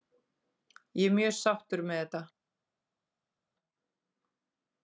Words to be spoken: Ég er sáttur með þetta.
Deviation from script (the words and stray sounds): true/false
true